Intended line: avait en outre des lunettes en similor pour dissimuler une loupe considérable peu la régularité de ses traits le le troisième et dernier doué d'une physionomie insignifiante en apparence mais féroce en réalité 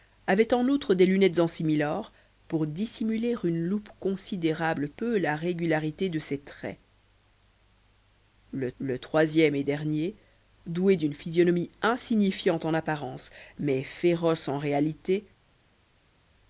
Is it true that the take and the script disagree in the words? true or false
false